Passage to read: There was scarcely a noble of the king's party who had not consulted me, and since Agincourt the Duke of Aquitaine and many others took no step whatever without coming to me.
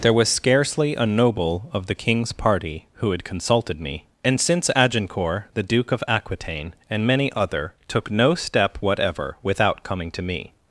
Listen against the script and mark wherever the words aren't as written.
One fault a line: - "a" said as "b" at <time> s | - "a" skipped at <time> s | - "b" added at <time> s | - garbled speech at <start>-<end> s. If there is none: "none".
- "not" skipped at 3.2 s
- "others" said as "other" at 7.3 s